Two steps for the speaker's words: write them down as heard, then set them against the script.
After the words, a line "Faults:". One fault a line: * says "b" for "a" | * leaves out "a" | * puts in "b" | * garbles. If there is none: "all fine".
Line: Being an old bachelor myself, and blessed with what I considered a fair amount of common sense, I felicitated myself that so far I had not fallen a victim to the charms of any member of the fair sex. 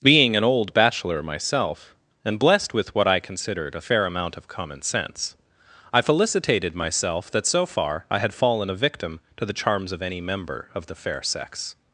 Being an old bachelor myself, and blessed with what I considered a fair amount of common sense, I felicitated myself that so far I had fallen a victim to the charms of any member of the fair sex.
Faults:
* leaves out "not"